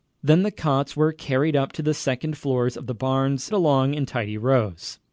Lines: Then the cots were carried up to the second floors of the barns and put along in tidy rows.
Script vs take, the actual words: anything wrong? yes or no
yes